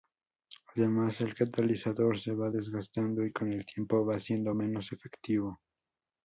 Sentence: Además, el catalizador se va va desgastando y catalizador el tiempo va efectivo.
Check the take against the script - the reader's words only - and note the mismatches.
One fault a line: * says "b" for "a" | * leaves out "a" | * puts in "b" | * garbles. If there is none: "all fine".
* leaves out "va"
* says "con" for "catalizador"
* puts in "siendo menos"